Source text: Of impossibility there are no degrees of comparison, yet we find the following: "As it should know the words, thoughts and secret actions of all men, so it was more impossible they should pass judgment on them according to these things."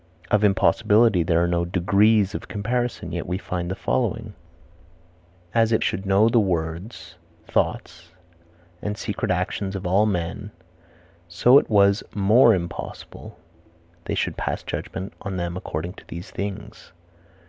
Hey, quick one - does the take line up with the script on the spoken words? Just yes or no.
yes